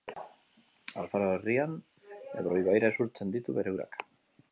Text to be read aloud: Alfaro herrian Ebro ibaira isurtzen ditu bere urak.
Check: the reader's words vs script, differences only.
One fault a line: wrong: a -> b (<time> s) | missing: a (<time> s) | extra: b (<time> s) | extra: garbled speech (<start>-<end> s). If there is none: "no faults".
no faults